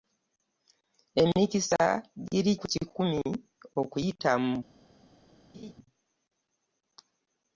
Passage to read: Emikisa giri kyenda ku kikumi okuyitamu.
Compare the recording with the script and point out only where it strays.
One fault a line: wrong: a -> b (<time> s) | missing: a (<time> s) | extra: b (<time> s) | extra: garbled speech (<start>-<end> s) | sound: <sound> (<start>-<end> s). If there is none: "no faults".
missing: kyenda (2.5 s)
sound: laugh (5.5-5.7 s)